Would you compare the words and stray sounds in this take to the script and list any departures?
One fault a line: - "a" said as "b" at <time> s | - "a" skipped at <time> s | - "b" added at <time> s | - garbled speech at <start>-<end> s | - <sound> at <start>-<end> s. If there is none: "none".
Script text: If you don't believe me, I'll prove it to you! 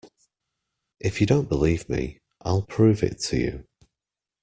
none